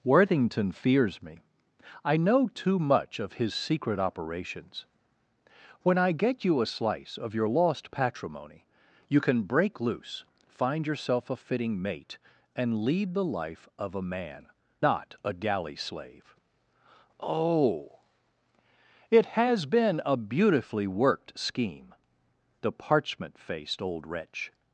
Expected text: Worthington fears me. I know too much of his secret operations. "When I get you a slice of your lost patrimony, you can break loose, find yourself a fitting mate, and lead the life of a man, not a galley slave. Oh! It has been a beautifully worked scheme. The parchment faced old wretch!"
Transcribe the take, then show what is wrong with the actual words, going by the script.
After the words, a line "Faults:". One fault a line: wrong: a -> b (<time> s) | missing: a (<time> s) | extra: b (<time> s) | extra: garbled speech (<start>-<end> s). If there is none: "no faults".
Worthington fears me. I know too much of his secret operations. "When I get you a slice of your lost patrimony, you can break loose, find yourself a fitting mate, and lead the life of a man, not a galley slave. Oh! It has been a beautifully worked scheme. The parchment faced old wretch!"
Faults:
no faults